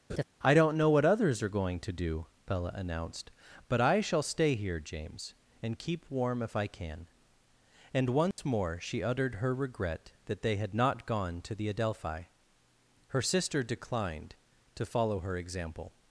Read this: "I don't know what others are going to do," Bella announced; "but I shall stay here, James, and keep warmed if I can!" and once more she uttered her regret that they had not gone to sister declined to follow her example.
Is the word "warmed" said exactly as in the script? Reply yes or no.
no